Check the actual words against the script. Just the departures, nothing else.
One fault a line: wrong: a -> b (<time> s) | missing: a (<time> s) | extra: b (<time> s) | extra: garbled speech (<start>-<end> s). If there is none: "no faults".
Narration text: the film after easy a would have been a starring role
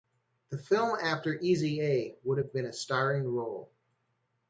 no faults